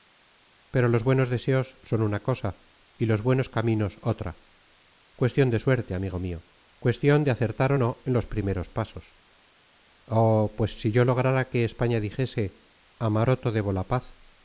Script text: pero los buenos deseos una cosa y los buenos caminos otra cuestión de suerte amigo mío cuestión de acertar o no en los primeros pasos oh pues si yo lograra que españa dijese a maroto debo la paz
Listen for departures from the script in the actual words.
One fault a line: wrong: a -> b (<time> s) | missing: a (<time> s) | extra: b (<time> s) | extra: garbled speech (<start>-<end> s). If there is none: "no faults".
extra: son (1.8 s)